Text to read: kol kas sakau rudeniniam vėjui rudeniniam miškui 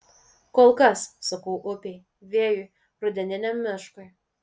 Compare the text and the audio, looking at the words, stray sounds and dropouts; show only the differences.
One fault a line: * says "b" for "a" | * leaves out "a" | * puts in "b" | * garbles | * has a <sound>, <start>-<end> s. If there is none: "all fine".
* says "upei" for "rudeniniam"